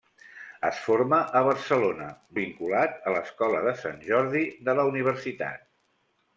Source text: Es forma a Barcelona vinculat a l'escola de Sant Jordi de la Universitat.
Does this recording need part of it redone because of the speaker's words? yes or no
no